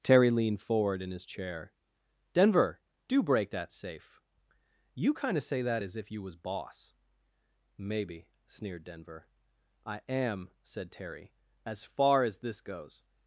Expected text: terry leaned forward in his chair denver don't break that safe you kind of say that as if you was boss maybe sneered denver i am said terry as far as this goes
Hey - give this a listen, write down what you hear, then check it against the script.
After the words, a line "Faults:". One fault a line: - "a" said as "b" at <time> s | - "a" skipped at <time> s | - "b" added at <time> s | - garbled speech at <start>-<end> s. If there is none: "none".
terry leaned forward in his chair denver do break that safe you kind of say that as if you was boss maybe sneered denver i am said terry as far as this goes
Faults:
- "don't" said as "do" at 3.1 s